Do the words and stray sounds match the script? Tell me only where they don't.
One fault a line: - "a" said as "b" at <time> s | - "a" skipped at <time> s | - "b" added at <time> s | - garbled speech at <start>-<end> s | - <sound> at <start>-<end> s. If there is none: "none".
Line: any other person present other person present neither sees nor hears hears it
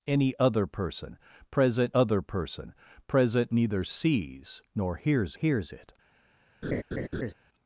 - laugh at 6.6-7.3 s